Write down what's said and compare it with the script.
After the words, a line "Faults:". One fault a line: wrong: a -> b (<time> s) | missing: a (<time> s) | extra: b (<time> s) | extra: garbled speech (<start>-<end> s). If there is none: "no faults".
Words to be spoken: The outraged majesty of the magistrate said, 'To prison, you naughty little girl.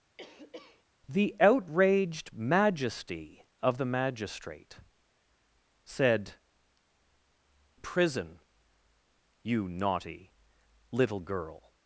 The outraged majesty of the magistrate said, 'Prison, you naughty little girl.
Faults:
missing: To (6.3 s)